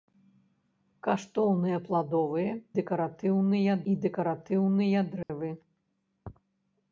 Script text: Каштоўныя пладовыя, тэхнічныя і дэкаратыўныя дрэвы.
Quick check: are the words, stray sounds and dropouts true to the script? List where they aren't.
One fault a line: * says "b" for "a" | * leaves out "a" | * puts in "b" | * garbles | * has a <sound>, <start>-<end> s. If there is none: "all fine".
* says "дэкаратыўныя" for "тэхнічныя"
* has a dropout, 5.2-5.3 s